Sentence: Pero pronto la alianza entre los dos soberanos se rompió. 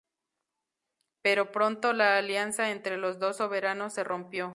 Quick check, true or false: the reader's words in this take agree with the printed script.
true